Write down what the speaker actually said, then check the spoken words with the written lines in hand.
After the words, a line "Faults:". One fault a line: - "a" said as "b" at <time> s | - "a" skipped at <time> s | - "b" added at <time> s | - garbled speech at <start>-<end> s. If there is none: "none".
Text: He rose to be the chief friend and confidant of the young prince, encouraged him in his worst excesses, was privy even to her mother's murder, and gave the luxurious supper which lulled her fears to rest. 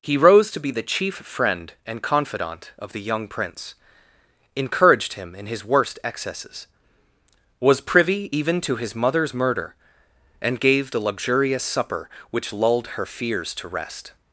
He rose to be the chief friend and confidant of the young prince, encouraged him in his worst excesses, was privy even to his mother's murder, and gave the luxurious supper which lulled her fears to rest.
Faults:
- "her" said as "his" at 8.8 s